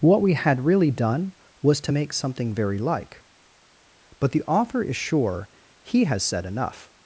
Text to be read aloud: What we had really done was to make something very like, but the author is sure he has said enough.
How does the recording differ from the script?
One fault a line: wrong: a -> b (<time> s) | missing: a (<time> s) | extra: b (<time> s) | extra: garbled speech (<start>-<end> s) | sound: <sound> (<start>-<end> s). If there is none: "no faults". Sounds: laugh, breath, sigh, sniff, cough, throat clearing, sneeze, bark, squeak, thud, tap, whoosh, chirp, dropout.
no faults